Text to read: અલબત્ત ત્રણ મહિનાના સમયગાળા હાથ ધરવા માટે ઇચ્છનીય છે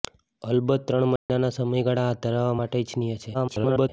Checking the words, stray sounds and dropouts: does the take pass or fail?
fail